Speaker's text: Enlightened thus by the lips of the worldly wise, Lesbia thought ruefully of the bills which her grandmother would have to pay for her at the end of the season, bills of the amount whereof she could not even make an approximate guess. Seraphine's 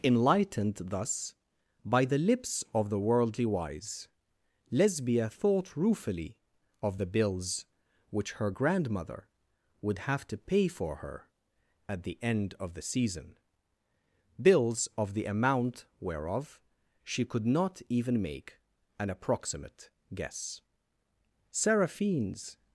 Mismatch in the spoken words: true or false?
false